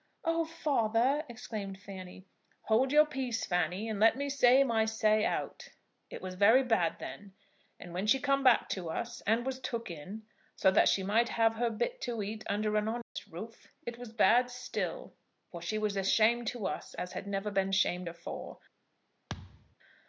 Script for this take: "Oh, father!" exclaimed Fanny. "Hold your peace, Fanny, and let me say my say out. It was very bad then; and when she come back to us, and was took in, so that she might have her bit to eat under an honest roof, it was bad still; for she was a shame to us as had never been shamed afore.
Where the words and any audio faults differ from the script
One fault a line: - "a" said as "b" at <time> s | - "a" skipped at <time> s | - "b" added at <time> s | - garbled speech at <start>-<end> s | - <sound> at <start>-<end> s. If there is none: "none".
- dropout at 13.0-13.2 s
- thud at 19.3-19.8 s